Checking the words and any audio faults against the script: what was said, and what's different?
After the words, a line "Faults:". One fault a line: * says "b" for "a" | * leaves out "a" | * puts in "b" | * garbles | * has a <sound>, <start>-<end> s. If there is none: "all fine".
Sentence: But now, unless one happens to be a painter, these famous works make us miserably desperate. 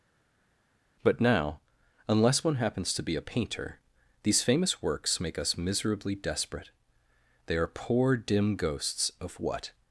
But now, unless one happens to be a painter, these famous works make us miserably desperate. They are poor, dim ghosts of what
Faults:
* puts in "They are poor dim ghosts of what"